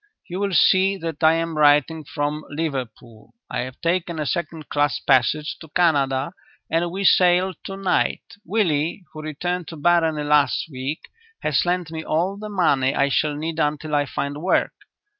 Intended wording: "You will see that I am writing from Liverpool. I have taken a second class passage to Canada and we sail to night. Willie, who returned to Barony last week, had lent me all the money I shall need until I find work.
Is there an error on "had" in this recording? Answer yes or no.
yes